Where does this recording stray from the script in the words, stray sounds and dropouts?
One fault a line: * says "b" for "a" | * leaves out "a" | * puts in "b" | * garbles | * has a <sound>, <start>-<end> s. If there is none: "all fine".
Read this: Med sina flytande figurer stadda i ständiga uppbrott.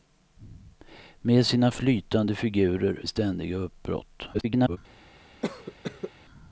* leaves out "stadda"
* garbles
* has a cough, 5.4-6.1 s